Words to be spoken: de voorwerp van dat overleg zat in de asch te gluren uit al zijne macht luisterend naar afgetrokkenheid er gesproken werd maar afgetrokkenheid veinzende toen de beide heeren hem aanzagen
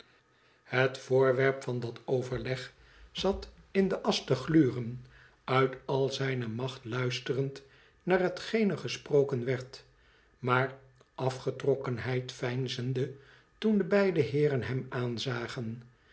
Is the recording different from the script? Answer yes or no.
yes